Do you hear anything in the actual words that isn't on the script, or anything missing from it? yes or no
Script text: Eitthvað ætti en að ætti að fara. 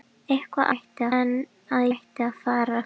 no